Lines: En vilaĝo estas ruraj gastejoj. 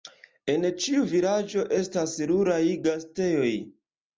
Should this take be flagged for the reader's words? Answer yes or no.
yes